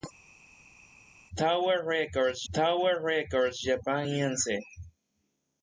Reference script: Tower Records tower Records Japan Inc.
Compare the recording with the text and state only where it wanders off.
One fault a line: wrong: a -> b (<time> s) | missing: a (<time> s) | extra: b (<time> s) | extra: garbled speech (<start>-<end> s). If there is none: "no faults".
no faults